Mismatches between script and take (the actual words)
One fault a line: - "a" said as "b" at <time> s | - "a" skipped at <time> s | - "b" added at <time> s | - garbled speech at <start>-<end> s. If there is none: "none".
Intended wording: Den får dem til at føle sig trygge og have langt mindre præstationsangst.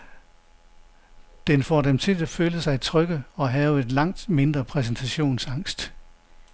none